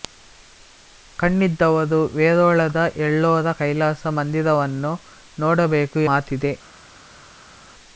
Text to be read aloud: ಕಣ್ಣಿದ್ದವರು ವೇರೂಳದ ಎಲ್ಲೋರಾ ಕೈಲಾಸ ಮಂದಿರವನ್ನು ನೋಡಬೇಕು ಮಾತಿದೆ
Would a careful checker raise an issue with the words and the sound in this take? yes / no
no